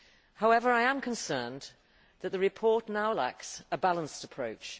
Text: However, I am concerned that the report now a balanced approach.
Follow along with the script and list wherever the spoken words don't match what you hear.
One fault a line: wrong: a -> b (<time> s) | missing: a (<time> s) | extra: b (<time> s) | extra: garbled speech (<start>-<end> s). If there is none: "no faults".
extra: lacks (3.1 s)